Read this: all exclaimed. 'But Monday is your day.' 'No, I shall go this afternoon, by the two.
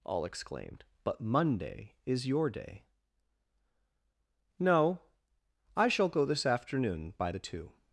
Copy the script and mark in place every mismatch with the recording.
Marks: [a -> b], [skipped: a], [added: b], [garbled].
all exclaimed. 'But Monday is your day.' 'No, I shall go this afternoon, by the two.